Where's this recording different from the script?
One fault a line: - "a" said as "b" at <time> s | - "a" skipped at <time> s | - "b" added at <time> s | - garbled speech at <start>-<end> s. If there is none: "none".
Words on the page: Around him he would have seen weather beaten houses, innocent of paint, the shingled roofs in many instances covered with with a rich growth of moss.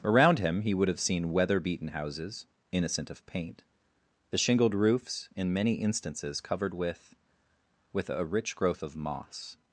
none